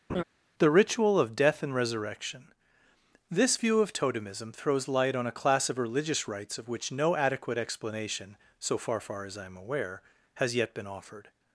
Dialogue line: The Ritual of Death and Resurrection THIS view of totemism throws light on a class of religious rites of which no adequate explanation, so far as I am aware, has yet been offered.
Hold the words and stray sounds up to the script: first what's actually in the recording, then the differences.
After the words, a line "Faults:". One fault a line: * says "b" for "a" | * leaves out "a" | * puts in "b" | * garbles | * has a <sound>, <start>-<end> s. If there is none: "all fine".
The Ritual of Death and Resurrection THIS view of totemism throws light on a class of religious rites of which no adequate explanation, so far far as I am aware, has yet been offered.
Faults:
* has a laugh, 0.1-0.2 s
* puts in "far"